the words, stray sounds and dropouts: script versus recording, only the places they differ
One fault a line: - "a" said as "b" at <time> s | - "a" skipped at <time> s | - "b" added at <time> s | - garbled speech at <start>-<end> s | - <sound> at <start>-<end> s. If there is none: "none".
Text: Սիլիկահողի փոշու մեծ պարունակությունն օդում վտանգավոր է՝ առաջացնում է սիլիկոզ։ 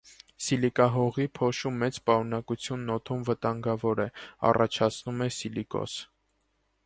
none